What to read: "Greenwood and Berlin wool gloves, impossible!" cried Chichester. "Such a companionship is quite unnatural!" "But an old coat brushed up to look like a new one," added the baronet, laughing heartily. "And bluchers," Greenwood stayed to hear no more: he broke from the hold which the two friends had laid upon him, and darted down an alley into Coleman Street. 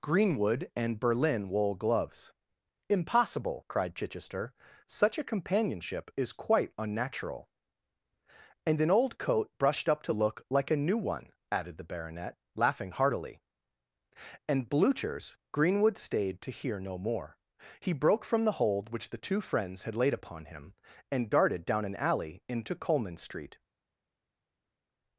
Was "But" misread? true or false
true